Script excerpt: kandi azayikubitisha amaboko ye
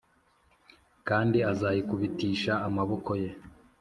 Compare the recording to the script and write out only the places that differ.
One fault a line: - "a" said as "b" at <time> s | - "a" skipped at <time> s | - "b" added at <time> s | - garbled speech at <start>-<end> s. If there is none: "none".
none